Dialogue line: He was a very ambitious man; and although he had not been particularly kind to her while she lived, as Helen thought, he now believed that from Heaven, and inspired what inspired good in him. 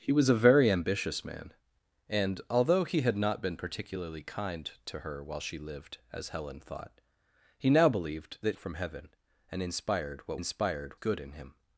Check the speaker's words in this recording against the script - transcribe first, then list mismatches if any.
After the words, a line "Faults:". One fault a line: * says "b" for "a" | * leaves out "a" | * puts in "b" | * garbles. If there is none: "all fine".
He was a very ambitious man; and although he had not been particularly kind to her while she lived, as Helen thought, he now believed that from Heaven, and inspired what inspired good in him.
Faults:
all fine